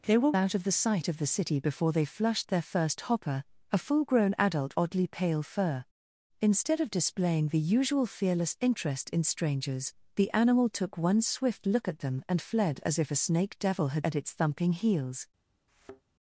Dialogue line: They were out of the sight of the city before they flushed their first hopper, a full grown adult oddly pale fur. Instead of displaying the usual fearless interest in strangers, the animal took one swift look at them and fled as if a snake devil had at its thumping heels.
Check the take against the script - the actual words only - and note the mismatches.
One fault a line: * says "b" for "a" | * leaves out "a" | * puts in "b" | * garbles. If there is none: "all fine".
all fine